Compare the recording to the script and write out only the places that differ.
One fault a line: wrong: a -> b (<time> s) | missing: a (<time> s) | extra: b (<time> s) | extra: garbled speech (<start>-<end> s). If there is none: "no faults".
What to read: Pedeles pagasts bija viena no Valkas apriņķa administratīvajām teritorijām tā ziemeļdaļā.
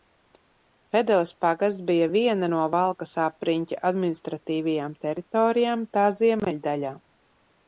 no faults